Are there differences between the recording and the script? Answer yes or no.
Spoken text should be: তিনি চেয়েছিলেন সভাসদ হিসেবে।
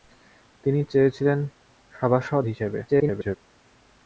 yes